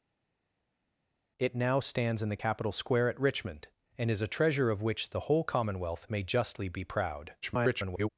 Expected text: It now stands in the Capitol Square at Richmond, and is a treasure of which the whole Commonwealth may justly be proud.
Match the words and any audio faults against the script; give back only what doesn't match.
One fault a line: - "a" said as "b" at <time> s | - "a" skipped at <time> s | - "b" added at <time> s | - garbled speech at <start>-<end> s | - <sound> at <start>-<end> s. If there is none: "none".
- garbled speech at 7.4-8.1 s